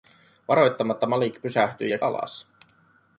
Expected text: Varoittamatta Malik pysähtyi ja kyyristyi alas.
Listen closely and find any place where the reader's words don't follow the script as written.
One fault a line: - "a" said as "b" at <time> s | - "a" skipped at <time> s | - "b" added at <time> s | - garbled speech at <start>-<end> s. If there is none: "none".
- "kyyristyi" skipped at 2.0 s